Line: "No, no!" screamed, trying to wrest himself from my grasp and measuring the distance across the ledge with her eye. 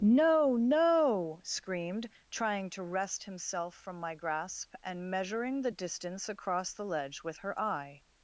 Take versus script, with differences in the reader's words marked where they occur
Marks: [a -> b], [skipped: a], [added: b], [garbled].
"No, no!" screamed, trying to wrest himself from my grasp and measuring the distance across the ledge with her eye.